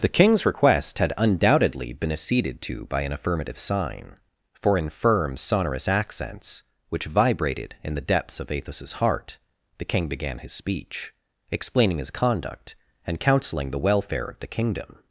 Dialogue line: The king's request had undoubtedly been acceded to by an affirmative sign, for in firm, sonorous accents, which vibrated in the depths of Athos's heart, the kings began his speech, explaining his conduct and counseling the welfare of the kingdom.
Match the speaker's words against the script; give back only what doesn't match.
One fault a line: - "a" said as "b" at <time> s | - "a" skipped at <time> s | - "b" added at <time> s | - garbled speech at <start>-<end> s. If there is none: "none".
- "kings" said as "king" at 9.8 s